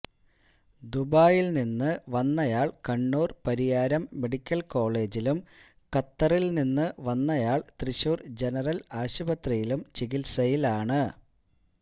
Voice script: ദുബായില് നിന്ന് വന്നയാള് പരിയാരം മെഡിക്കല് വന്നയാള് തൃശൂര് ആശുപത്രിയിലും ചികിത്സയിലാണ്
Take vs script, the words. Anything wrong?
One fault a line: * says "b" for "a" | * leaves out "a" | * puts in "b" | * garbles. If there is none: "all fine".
* puts in "കണ്ണൂര്"
* puts in "കോളേജിലും ഖത്തറില് നിന്ന്"
* puts in "ജനറല്"